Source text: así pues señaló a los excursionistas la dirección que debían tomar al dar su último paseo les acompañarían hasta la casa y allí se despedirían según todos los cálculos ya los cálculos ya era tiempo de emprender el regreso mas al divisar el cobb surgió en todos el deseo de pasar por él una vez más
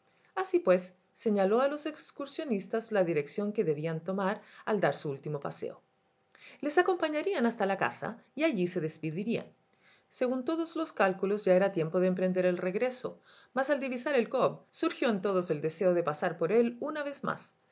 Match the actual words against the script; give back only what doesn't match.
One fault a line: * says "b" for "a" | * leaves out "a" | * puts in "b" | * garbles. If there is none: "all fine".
* leaves out "los cálculos ya"